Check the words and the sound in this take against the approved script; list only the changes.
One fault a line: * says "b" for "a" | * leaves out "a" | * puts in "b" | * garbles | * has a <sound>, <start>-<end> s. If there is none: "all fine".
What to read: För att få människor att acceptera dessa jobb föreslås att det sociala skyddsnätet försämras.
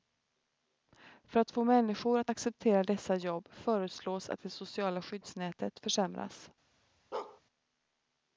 * has a bark, 7.1-7.4 s